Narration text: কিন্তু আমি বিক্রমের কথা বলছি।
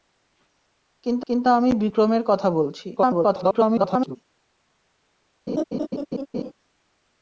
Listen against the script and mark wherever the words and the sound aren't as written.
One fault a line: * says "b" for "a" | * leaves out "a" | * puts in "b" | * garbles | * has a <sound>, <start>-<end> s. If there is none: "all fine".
* puts in "কিন্তু"
* garbles
* has a laugh, 5.5-6.5 s